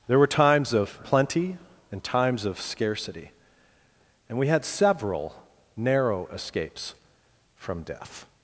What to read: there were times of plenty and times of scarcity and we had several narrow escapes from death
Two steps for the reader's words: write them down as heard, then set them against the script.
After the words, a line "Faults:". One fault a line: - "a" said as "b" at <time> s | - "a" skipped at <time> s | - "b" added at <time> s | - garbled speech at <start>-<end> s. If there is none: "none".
there were times of plenty and times of scarcity and we had several narrow escapes from death
Faults:
none